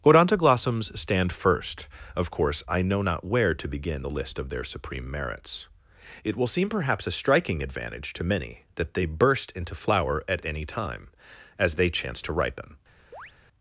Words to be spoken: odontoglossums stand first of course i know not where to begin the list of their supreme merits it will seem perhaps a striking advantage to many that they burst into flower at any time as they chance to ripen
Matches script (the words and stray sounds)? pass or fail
fail